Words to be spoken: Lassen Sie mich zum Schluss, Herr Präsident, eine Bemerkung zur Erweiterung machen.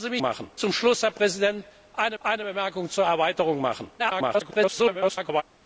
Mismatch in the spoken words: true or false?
true